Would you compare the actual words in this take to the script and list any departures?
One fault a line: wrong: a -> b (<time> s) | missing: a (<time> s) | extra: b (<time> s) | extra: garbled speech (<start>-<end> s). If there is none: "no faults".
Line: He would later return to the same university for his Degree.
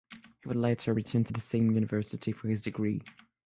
no faults